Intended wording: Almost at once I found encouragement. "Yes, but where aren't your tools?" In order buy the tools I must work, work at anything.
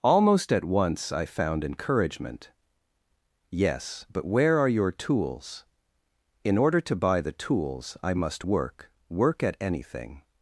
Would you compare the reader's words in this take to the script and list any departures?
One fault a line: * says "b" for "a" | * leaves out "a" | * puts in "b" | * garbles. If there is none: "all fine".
* says "are" for "aren't"
* puts in "to"